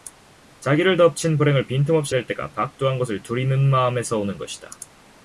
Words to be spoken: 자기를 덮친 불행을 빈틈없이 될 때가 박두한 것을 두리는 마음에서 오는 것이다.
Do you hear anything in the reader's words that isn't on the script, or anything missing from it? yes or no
no